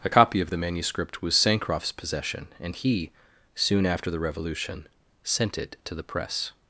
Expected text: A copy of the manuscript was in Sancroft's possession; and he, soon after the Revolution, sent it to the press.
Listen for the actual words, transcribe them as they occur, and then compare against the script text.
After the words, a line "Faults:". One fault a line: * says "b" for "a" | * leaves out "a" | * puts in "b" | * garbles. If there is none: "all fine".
A copy of the manuscript was Sancroft's possession; and he, soon after the Revolution, sent it to the press.
Faults:
* leaves out "in"